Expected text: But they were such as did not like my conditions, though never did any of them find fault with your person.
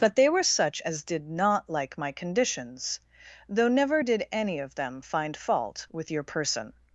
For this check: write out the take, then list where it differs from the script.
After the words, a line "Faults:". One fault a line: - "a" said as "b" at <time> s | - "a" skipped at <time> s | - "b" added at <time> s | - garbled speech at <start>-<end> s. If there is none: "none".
But they were such as did not like my conditions, though never did any of them find fault with your person.
Faults:
none